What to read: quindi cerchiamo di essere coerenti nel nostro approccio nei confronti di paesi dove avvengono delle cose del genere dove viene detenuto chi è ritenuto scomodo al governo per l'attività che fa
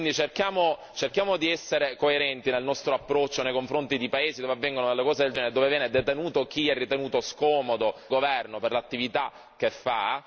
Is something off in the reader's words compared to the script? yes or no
yes